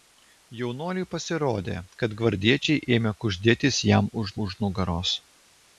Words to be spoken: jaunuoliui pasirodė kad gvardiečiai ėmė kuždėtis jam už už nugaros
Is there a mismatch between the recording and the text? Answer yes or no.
no